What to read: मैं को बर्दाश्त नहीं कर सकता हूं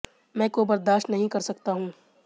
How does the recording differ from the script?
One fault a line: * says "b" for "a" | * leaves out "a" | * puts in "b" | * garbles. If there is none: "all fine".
all fine